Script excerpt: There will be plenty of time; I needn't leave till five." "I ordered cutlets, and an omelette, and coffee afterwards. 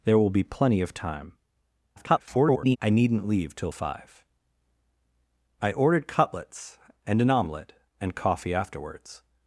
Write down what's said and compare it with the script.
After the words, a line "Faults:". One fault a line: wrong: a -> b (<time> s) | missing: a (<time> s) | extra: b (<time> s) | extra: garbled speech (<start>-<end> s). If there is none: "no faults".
There will be plenty of time; [garbled] I needn't leave till five." "I ordered cutlets, and an omelette, and coffee afterwards.
Faults:
extra: garbled speech (2.0-2.8 s)